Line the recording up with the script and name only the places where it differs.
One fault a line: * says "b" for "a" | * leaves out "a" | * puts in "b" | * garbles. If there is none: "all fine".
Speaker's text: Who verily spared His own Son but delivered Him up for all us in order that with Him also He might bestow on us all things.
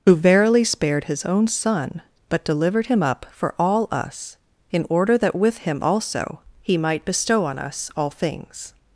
all fine